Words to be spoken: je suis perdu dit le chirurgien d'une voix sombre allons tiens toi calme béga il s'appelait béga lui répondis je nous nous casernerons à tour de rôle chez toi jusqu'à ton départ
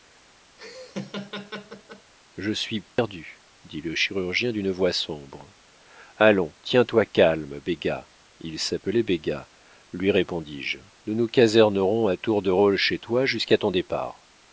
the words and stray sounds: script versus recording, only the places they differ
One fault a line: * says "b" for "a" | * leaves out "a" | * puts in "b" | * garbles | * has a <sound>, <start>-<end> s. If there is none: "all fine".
* has a laugh, 0.6-2.1 s
* has a dropout, 2.9-3.0 s